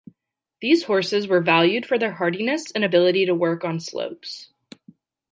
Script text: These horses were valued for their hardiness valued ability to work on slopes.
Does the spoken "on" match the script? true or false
true